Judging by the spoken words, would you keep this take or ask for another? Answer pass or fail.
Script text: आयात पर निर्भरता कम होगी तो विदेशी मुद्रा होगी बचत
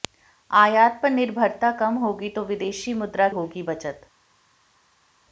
pass